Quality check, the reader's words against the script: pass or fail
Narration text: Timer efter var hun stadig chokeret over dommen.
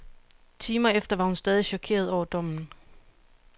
pass